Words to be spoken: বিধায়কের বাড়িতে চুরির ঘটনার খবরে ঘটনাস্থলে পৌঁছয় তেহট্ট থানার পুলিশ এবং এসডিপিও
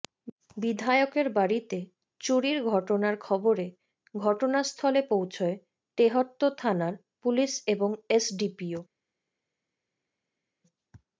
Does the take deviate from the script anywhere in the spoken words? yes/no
no